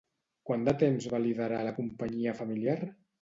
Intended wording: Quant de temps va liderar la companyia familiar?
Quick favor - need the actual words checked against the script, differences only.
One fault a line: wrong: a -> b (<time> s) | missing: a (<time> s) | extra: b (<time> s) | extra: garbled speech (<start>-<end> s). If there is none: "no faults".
no faults